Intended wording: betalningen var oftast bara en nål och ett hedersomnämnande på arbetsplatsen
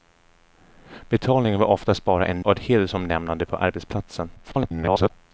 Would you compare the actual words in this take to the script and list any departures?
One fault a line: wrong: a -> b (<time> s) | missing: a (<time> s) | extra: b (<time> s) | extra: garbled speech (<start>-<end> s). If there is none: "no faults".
missing: nål (2.5 s)
extra: garbled speech (4.4-5.1 s)